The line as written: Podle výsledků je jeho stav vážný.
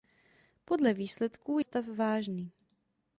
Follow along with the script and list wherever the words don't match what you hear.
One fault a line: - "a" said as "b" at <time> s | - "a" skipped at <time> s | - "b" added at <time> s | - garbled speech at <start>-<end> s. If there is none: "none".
- "je jeho" skipped at 1.6 s